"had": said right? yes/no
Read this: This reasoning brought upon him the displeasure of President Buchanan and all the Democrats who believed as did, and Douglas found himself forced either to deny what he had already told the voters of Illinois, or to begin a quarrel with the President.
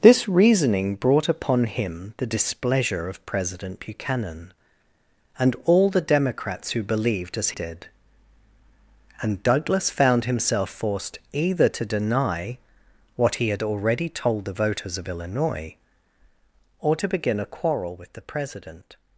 yes